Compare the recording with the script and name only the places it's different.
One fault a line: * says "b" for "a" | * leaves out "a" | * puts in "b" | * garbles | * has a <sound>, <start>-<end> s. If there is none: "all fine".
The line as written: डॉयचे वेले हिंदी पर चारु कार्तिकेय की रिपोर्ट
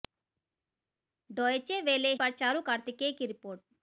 * leaves out "हिंदी"